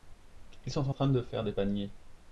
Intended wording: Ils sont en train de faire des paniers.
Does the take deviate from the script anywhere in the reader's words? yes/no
no